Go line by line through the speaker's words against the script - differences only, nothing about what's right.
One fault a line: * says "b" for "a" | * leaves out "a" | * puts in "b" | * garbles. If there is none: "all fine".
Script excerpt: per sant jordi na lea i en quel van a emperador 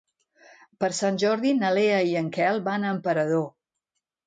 all fine